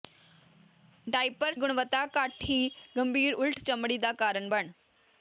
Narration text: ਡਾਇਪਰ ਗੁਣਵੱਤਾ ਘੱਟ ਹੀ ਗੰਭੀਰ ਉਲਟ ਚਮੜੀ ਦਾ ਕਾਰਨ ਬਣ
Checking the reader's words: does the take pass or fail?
pass